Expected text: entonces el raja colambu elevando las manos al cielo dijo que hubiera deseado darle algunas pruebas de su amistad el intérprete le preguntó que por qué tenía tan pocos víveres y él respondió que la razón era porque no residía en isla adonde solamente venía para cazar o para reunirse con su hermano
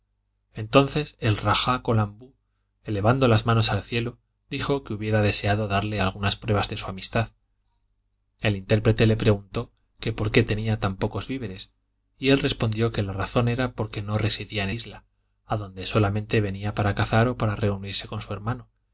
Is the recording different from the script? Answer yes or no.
no